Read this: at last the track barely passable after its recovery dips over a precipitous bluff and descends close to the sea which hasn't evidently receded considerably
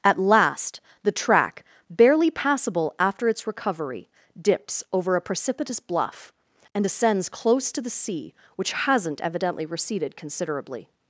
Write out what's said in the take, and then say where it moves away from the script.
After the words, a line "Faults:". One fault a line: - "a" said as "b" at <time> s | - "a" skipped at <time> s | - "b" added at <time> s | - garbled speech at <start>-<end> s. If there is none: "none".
at last the track barely passable after its recovery dips over a precipitous bluff and descends close to the sea which hasn't evidently receded considerably
Faults:
none